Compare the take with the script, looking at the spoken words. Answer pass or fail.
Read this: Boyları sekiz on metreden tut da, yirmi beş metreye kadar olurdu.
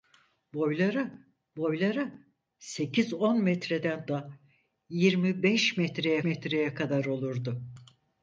fail